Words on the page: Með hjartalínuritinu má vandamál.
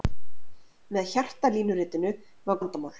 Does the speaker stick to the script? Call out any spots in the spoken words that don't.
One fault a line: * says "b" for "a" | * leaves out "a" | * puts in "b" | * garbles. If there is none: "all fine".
all fine